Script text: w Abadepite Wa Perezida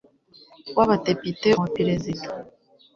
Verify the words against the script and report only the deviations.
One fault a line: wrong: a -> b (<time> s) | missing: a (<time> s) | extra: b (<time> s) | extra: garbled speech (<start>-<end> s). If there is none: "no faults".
no faults